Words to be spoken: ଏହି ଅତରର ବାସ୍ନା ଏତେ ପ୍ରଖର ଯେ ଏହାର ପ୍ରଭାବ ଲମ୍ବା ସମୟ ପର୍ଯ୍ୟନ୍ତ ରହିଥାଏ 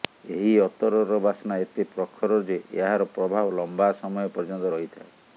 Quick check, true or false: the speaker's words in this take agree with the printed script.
true